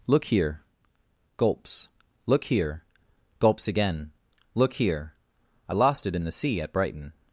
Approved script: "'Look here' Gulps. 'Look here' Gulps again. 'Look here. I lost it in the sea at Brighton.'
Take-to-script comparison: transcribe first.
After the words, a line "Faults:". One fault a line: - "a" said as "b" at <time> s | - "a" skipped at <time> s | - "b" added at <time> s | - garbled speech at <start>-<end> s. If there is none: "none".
"'Look here' Gulps. 'Look here' Gulps again. 'Look here. I lost it in the sea at Brighton.'
Faults:
none